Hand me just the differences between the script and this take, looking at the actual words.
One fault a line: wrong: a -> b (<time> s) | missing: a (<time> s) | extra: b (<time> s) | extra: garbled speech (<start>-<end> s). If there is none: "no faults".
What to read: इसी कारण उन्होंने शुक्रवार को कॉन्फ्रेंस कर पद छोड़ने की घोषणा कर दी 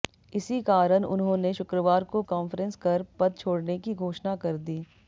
no faults